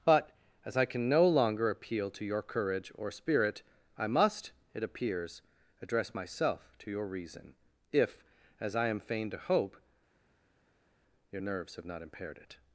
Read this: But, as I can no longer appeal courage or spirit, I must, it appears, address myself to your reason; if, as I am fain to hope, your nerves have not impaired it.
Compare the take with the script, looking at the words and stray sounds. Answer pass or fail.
fail